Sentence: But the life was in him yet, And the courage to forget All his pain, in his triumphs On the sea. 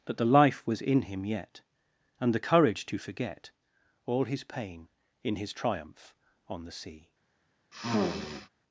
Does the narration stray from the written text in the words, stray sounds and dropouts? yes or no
yes